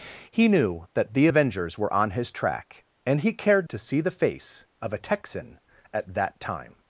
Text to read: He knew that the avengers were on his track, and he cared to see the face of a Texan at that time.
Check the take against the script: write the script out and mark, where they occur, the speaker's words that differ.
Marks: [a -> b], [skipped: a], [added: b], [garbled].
He knew that the avengers were on his track, and he cared to see the face of a Texan at that time.